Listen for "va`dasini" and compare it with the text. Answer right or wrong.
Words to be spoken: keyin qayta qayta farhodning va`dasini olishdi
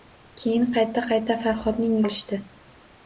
wrong